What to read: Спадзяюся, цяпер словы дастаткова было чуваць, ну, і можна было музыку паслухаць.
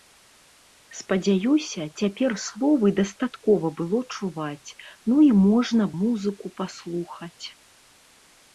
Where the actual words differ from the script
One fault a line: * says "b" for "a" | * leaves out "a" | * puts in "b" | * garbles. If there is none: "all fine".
* leaves out "было"